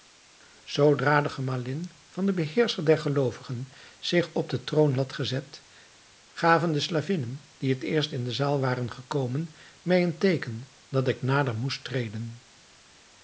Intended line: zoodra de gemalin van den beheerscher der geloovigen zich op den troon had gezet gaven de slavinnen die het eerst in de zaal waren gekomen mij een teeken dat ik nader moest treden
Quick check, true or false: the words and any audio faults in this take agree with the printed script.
true